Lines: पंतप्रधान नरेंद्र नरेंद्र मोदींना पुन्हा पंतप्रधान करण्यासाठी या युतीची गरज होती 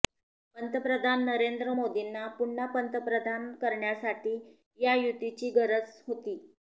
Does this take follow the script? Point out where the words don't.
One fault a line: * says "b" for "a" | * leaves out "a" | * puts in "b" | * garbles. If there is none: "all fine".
* leaves out "नरेंद्र"